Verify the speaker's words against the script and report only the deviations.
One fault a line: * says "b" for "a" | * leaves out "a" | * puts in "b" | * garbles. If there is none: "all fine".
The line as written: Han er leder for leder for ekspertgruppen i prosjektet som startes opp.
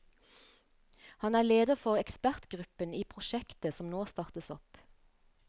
* leaves out "leder for"
* puts in "nå"